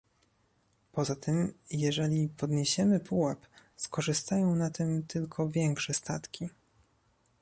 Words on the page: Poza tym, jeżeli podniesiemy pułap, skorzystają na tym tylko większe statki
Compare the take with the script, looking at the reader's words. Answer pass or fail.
pass